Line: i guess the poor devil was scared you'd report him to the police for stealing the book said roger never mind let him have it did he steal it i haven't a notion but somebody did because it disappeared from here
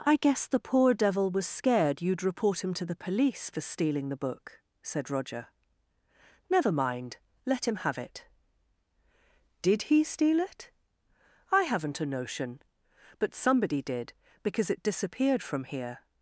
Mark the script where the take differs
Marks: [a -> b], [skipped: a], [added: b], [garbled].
i guess the poor devil was scared you'd report him to the police for stealing the book said roger never mind let him have it did he steal it i haven't a notion but somebody did because it disappeared from here